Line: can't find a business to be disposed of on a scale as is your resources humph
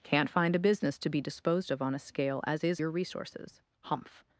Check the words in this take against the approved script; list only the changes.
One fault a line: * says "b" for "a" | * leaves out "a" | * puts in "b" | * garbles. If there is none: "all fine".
all fine